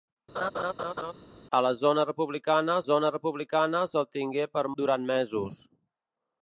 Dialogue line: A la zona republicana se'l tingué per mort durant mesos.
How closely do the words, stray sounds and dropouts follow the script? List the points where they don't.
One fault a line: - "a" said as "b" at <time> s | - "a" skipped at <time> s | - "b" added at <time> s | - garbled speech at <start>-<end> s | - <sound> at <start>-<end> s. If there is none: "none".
- laugh at 0.3-1.1 s
- "zona republicana" added at 2.9 s
- "mort" skipped at 4.6 s